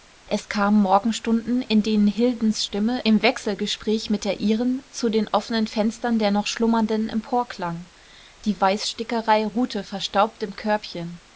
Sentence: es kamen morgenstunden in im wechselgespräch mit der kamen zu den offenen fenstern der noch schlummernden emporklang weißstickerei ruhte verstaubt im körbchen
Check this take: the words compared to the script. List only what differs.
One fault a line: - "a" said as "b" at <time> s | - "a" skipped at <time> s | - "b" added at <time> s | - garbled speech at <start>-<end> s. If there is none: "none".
- "denen hildens stimme" added at 1.8 s
- "kamen" said as "ihren" at 4.4 s
- "die" added at 8.4 s